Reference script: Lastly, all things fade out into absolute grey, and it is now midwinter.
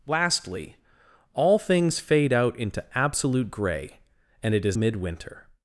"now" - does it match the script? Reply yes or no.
no